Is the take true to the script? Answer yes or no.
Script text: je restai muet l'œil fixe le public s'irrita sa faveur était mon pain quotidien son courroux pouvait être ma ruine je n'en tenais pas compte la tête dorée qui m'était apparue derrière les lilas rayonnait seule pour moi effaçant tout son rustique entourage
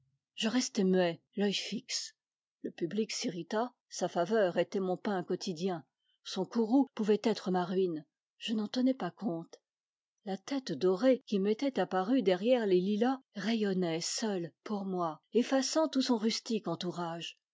yes